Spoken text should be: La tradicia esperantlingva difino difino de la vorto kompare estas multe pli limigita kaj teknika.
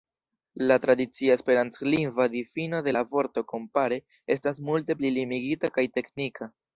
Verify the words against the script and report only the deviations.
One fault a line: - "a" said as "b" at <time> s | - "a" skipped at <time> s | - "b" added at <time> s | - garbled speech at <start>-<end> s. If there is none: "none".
- "difino" skipped at 2.8 s